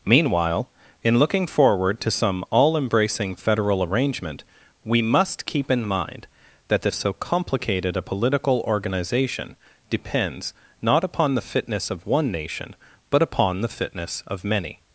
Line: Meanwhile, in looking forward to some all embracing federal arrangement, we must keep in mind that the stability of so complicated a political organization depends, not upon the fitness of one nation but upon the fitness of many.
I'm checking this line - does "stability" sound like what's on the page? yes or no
no